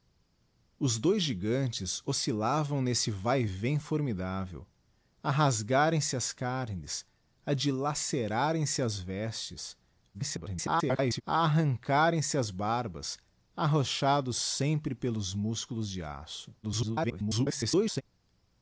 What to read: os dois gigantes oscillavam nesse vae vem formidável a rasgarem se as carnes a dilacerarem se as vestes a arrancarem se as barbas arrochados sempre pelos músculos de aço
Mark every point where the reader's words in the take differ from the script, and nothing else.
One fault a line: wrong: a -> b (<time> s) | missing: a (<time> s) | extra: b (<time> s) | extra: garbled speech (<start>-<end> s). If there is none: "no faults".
extra: garbled speech (10.1-11.2 s)
extra: garbled speech (16.6-18.0 s)